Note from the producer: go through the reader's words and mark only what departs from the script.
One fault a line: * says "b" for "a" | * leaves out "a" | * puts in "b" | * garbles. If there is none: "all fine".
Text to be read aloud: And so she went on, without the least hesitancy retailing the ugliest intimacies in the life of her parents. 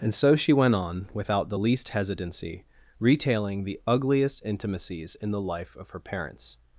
all fine